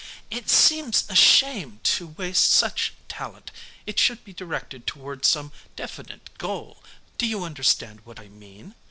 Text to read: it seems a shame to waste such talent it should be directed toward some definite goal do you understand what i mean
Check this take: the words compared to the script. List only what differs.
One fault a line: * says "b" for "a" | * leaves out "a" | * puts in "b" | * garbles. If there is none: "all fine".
all fine